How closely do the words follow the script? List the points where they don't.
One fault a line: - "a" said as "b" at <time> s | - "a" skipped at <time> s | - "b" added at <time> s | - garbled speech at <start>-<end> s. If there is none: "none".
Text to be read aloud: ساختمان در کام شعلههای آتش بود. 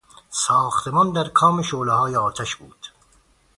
none